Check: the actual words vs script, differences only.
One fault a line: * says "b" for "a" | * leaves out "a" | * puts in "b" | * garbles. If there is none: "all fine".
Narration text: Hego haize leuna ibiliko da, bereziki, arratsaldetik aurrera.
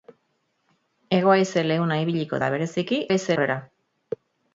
* says "haize" for "arratsaldetik"